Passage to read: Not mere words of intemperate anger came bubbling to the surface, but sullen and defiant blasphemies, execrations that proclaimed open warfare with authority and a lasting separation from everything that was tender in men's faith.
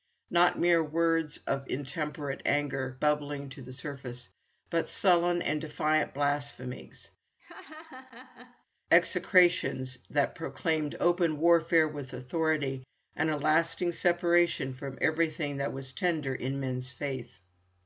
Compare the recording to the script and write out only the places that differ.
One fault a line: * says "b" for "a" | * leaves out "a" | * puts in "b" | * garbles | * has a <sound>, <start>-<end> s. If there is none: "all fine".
* leaves out "came"
* has a laugh, 7.4-8.7 s